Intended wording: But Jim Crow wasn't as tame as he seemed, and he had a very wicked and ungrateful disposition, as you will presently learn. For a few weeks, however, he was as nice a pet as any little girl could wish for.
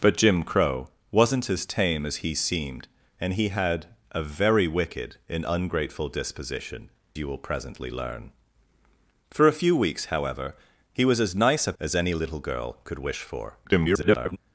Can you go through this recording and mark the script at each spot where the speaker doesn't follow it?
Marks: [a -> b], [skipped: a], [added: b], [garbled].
But Jim Crow wasn't as tame as he seemed, and he had a very wicked and ungrateful disposition, [skipped: as] you will presently learn. For a few weeks, however, he was as nice a [skipped: pet] as any little girl could wish for. [garbled]